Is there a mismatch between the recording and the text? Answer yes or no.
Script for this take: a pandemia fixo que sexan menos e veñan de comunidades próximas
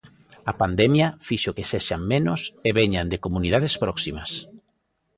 no